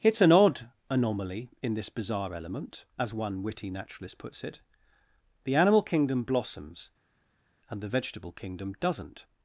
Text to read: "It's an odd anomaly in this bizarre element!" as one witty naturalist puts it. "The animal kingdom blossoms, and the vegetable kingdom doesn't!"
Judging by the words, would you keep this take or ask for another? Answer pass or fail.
pass